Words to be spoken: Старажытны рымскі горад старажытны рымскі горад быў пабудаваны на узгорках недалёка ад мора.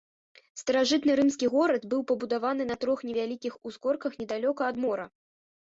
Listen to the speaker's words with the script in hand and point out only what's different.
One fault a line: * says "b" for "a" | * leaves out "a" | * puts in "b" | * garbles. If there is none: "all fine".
* leaves out "старажытны рымскі горад"
* puts in "трох невялікіх"